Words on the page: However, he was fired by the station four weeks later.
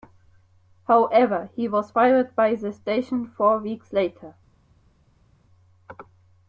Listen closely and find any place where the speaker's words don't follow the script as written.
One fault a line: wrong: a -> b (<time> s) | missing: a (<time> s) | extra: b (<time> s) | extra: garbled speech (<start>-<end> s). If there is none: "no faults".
no faults